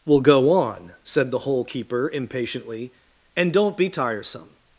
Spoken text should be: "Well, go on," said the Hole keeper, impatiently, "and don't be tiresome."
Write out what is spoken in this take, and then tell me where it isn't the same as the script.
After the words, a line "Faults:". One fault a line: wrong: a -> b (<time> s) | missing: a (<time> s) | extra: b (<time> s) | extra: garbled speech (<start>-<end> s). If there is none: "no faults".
"Well, go on," said the Hole keeper, impatiently, "and don't be tiresome."
Faults:
no faults